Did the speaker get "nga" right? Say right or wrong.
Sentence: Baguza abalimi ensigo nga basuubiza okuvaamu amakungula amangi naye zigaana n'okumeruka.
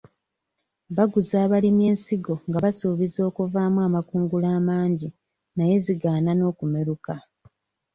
right